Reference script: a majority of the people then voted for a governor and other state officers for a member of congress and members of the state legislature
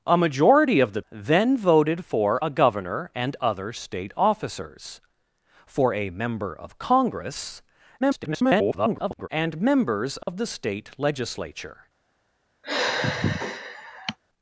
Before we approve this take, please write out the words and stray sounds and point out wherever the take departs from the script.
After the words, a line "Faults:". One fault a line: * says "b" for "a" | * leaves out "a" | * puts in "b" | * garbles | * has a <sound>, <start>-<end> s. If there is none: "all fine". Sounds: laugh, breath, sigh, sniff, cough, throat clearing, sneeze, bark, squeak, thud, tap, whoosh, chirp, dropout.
a majority of the then voted for a governor and other state officers for a member of congress [garbled] and members of the state legislature
Faults:
* leaves out "people"
* garbles
* has a dropout, 10.2-10.3 s
* has a sigh, 12.6-14.2 s